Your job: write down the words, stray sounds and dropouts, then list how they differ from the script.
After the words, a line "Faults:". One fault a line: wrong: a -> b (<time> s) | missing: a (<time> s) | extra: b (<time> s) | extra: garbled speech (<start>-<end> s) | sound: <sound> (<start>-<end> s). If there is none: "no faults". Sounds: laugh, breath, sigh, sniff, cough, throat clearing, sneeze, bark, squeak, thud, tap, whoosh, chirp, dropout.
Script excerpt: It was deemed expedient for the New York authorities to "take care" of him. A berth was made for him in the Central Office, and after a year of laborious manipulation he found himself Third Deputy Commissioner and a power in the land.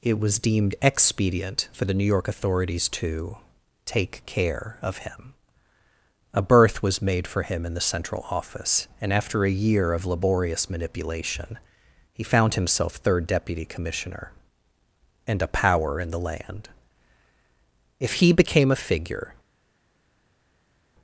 It was deemed expedient for the New York authorities to "take care" of him. A berth was made for him in the Central Office, and after a year of laborious manipulation he found himself Third Deputy Commissioner and a power in the land. If he became a figure
Faults:
extra: If he became a figure (18.0 s)